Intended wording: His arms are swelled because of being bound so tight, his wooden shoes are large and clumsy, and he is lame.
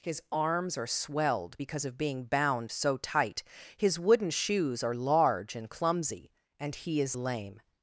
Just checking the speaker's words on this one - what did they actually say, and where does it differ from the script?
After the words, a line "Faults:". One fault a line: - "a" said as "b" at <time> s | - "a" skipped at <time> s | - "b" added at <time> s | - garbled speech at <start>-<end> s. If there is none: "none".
His arms are swelled because of being bound so tight, his wooden shoes are large and clumsy, and he is lame.
Faults:
none